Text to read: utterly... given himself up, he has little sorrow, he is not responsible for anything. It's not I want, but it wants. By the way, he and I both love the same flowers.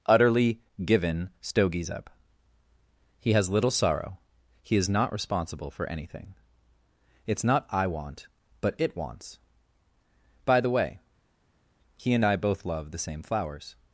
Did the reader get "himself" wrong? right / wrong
wrong